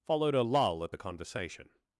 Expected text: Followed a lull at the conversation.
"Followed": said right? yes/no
yes